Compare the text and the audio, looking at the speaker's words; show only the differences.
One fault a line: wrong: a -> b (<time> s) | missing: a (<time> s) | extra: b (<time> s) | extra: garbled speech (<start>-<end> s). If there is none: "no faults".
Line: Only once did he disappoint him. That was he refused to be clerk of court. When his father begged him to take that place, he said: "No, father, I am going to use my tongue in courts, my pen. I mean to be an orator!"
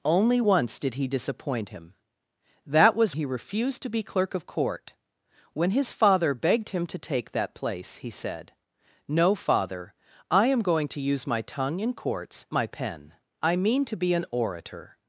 no faults